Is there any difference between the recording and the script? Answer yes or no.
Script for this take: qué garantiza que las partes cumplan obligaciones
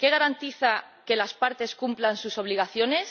yes